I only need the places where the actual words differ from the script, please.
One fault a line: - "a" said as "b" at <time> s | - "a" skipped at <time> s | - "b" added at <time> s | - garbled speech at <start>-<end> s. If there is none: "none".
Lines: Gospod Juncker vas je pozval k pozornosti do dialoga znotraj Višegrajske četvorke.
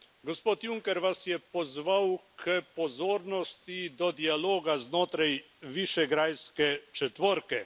none